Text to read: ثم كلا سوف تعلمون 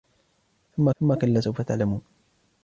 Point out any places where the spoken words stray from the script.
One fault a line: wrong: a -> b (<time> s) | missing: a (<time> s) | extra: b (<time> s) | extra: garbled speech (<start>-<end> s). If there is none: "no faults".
extra: ثم (1.0 s)